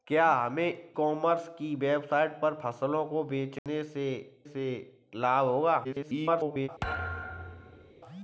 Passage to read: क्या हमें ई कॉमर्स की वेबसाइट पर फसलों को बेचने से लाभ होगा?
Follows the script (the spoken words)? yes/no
no